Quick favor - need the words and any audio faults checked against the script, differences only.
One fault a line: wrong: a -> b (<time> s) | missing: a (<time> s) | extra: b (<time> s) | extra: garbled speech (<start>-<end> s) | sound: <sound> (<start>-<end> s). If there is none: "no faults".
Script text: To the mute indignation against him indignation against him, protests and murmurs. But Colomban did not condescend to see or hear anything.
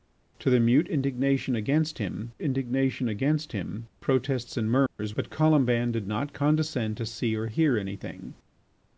sound: dropout (4.9-5.0 s)